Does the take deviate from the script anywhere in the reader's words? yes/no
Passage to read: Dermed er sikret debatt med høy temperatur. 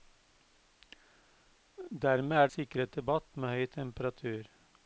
no